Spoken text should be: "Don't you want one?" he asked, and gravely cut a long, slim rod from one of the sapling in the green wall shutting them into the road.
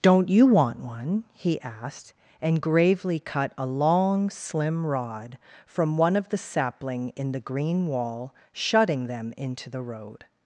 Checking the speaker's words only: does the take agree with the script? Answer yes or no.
yes